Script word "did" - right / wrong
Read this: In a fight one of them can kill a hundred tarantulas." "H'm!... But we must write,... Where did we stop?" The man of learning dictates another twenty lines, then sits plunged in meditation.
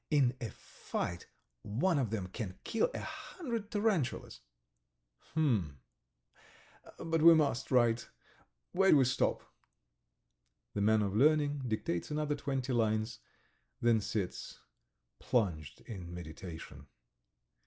wrong